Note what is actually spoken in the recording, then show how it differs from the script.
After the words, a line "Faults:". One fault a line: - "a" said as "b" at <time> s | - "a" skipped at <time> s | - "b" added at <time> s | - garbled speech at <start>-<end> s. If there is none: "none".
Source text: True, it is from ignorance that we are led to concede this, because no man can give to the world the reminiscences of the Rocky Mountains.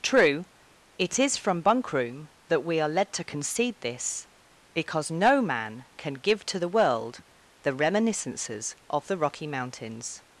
True, it is from bunkroom that we are led to concede this, because no man can give to the world the reminiscences of the Rocky Mountains.
Faults:
- "ignorance" said as "bunkroom" at 1.6 s